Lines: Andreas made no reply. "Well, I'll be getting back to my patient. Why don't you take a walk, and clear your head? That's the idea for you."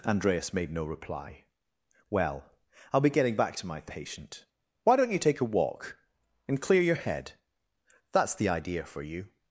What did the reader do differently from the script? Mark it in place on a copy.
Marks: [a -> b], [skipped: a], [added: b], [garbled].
Andreas made no reply. "Well, I'll be getting back to my patient. Why don't you take a walk, and clear your head? That's the idea for you."